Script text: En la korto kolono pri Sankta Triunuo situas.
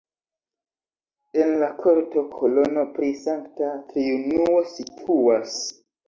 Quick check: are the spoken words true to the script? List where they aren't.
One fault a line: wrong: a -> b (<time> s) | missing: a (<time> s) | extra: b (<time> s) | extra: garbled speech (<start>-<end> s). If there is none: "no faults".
no faults